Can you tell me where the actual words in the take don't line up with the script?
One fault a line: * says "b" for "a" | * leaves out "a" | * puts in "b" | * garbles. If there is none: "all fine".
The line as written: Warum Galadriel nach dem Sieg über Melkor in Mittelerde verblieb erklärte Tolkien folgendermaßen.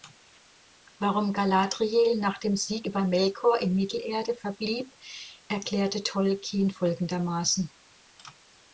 all fine